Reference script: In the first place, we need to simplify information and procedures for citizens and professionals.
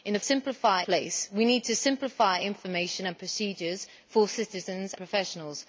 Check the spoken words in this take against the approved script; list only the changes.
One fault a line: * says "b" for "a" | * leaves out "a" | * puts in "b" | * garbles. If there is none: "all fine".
* says "simplify" for "first"
* leaves out "and"